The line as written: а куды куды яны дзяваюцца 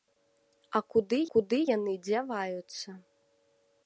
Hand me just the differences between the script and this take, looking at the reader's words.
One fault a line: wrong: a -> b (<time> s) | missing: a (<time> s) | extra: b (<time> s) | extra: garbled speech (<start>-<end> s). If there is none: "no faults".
no faults